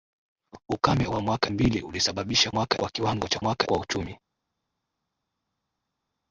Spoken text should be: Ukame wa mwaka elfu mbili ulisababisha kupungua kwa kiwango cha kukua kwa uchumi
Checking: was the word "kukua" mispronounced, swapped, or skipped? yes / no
yes